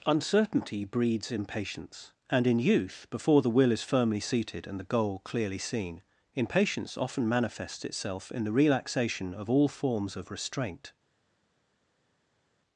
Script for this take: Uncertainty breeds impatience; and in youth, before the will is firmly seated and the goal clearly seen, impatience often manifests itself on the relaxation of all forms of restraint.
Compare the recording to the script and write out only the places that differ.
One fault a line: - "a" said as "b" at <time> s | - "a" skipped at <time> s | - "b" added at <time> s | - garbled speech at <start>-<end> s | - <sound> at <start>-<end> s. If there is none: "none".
- "on" said as "in" at 8.3 s